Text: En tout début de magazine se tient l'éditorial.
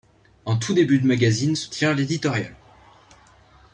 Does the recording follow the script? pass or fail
pass